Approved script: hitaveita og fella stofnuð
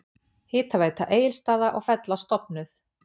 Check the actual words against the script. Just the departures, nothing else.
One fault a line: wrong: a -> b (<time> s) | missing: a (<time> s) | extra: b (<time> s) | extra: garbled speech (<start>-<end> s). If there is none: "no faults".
extra: egilsstaða (1.2 s)